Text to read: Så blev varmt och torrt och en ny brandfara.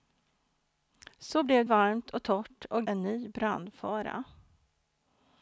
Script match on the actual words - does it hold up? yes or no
yes